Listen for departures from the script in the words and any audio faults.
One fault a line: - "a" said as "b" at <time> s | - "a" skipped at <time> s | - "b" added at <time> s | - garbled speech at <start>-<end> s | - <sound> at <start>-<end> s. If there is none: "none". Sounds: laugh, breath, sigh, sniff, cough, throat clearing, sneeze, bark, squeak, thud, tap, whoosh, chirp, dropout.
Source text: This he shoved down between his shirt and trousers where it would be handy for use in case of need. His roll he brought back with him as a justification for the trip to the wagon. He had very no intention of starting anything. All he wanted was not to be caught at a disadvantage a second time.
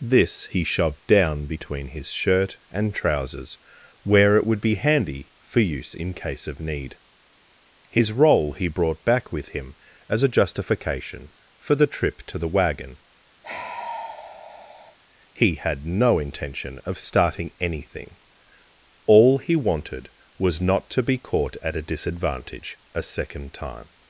- sigh at 13.4-15.0 s
- "very" skipped at 15.9 s